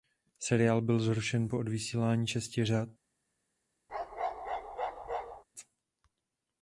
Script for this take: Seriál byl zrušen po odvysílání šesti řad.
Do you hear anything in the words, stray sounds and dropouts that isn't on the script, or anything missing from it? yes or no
yes